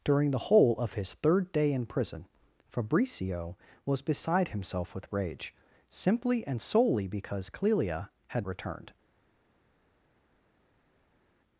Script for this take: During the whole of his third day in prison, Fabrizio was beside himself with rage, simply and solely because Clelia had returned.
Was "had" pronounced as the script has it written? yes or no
yes